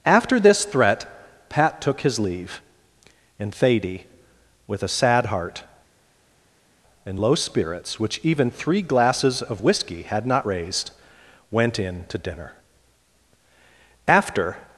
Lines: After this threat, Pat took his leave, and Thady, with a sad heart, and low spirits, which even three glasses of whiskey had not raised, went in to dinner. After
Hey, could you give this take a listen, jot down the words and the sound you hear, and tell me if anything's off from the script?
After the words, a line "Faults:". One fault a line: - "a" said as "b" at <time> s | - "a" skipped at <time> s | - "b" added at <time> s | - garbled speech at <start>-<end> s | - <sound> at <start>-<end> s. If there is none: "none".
After this threat, Pat took his leave, and Thady, with a sad heart, and low spirits, which even three glasses of whiskey had not raised, went in to dinner. After
Faults:
none